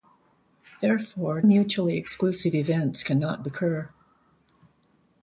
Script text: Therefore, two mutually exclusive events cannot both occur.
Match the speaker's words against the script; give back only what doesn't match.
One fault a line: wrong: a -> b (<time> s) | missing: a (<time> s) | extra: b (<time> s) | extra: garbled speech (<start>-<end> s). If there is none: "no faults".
missing: two (1.4 s)
missing: both (3.4 s)